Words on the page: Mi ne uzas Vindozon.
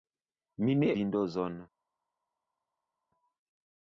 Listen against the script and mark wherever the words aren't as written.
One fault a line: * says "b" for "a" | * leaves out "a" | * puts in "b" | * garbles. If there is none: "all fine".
* leaves out "uzas"